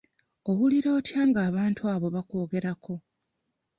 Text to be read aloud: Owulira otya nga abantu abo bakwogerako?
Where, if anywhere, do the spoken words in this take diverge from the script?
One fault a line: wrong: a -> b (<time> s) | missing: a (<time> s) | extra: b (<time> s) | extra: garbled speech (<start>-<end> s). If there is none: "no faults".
no faults